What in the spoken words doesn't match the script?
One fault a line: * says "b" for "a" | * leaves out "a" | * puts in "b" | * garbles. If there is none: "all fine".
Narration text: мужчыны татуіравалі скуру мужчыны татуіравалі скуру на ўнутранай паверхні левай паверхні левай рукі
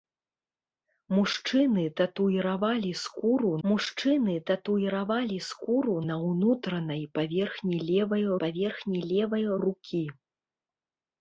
all fine